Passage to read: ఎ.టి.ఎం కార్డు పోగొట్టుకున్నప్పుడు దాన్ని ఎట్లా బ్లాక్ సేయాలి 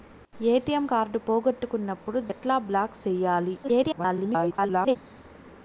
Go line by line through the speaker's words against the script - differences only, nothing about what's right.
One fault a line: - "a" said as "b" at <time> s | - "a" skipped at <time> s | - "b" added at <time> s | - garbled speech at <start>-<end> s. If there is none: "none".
- "దాన్ని" skipped at 2.2 s
- garbled speech at 3.6-5.0 s